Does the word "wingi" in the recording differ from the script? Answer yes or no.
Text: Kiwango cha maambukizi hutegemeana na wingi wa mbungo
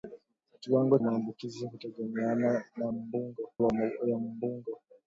yes